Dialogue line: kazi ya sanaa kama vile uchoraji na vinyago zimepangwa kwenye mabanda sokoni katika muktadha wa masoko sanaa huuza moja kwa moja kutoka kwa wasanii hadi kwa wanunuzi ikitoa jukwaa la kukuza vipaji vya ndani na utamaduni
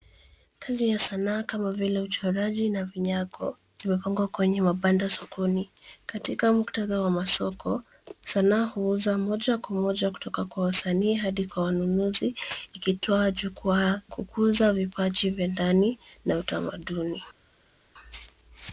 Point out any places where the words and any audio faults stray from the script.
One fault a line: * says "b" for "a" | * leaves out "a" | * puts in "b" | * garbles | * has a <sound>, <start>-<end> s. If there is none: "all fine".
* leaves out "la"